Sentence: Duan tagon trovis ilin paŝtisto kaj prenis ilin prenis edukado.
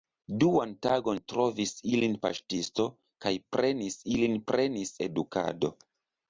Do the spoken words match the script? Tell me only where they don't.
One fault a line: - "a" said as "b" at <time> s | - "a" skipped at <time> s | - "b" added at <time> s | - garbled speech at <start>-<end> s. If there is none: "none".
none